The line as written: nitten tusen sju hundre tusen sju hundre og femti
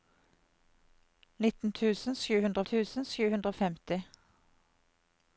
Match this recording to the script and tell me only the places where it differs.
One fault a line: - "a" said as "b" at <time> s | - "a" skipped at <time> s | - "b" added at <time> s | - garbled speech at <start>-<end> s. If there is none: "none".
none